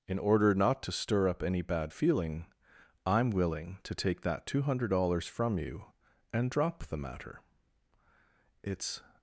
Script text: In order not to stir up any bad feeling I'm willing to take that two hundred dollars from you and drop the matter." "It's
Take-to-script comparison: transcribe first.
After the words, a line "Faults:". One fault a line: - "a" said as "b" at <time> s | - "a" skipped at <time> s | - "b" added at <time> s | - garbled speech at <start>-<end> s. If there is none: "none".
In order not to stir up any bad feeling I'm willing to take that two hundred dollars from you and drop the matter." "It's
Faults:
none